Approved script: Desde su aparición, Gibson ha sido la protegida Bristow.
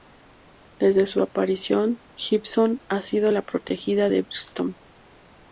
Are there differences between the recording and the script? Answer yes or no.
yes